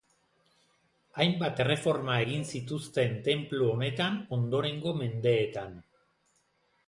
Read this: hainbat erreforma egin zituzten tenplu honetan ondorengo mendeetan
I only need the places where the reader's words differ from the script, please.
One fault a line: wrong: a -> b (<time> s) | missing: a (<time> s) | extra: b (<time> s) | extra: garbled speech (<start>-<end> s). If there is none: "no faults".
no faults